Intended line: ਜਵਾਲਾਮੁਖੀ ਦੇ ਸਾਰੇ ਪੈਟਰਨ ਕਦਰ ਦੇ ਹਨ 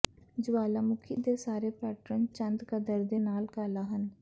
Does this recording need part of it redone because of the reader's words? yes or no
yes